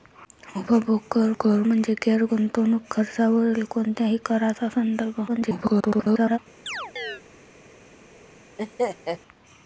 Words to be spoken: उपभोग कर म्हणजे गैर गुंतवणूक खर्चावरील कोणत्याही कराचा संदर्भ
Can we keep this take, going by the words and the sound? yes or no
no